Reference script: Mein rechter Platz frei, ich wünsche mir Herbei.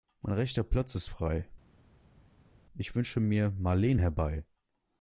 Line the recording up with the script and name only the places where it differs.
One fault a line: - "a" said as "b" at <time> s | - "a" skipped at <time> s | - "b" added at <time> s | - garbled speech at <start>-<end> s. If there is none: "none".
- "ist" added at 0.9 s
- "Marleen" added at 3.5 s